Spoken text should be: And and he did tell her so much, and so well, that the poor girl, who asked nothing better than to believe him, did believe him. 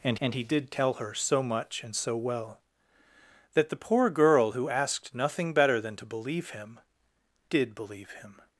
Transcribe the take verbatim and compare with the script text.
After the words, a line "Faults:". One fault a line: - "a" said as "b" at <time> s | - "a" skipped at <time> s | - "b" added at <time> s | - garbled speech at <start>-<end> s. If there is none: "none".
And and he did tell her so much, and so well, that the poor girl, who asked nothing better than to believe him, did believe him.
Faults:
none